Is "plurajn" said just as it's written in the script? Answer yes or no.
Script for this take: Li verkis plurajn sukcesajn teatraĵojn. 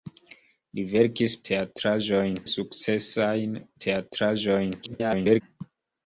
no